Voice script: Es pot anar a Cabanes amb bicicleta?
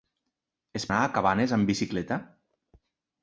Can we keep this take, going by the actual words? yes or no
no